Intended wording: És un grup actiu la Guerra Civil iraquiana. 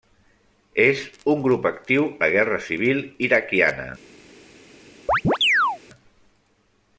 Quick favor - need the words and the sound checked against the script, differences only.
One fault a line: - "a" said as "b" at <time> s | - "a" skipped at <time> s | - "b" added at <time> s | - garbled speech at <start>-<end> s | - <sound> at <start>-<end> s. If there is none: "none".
- chirp at 5.1-5.8 s